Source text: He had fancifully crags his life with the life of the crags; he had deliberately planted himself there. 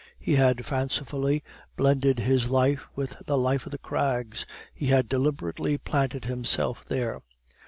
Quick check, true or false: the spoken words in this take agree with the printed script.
false